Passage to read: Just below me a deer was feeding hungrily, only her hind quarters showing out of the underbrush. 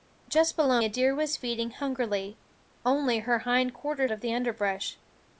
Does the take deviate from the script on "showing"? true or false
true